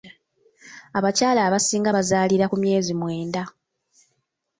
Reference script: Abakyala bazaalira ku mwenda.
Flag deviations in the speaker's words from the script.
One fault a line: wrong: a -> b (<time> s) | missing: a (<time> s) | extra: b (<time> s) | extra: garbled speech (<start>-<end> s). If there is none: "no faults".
extra: abasinga (1.5 s)
extra: myezi (2.6 s)